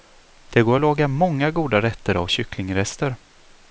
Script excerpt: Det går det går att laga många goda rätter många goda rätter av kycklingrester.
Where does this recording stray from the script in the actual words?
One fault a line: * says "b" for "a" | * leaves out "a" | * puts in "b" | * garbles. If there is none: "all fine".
* leaves out "det går"
* leaves out "många goda rätter"